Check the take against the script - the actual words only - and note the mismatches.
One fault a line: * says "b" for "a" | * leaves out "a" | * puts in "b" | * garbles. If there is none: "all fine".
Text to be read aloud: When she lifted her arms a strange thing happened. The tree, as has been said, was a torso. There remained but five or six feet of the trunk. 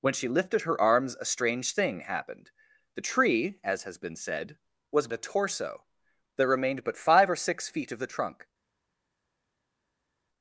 all fine